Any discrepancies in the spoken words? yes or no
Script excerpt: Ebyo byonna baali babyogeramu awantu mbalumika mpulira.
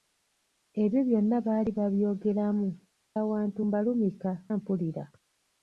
no